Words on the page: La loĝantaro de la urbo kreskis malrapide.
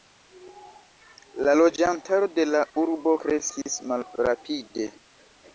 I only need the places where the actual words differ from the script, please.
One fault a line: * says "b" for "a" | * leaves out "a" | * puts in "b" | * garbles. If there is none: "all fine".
all fine